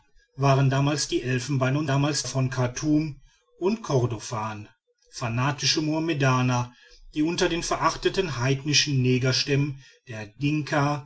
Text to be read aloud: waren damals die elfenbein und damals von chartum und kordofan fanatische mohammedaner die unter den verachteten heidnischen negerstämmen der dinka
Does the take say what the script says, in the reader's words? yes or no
yes